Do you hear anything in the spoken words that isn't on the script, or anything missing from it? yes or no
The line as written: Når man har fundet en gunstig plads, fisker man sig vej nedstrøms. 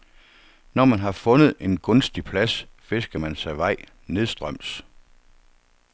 no